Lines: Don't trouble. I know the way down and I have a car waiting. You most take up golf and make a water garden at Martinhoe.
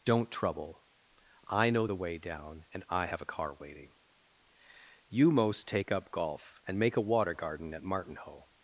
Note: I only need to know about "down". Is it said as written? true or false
true